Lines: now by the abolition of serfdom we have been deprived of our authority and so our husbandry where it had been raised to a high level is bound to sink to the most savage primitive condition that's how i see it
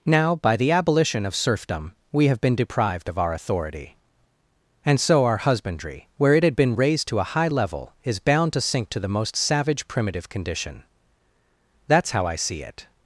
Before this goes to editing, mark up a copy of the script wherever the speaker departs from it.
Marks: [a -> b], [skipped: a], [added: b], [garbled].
now by the abolition of serfdom we have been deprived of our authority and so our husbandry where it had been raised to a high level is bound to sink to the most savage primitive condition that's how i see it